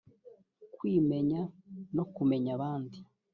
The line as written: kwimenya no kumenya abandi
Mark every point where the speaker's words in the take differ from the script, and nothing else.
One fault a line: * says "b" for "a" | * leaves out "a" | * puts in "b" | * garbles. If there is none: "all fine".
all fine